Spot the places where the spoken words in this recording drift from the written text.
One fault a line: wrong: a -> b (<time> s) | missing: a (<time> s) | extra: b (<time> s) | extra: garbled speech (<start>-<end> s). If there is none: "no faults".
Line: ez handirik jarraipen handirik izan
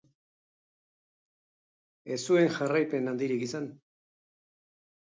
wrong: handirik -> zuen (2.3 s)